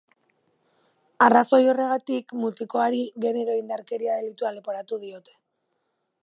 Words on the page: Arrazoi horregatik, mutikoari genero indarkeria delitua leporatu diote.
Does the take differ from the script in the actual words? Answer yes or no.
no